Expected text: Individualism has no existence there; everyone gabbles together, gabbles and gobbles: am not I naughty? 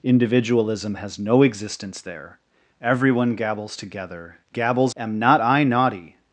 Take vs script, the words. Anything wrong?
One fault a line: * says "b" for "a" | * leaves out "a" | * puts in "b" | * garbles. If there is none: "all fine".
* leaves out "and gobbles"